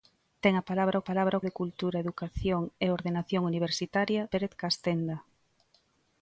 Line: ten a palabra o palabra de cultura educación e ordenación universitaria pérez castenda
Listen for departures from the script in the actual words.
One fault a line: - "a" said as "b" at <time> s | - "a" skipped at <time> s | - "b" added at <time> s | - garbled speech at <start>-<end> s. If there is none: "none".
none